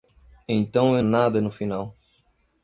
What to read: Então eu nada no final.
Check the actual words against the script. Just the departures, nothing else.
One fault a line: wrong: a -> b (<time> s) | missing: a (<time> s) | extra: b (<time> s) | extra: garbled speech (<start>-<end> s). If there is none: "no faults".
no faults